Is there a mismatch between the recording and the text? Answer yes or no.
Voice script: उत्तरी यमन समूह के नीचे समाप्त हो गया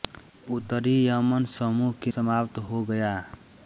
yes